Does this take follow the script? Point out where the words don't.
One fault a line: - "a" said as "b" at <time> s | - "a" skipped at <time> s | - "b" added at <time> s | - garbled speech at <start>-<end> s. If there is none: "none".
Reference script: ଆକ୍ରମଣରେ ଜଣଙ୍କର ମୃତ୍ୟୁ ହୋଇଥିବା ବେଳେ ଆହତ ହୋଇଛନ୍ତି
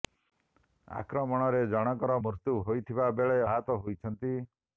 none